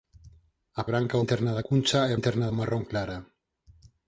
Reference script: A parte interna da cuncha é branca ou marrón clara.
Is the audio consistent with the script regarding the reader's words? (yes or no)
no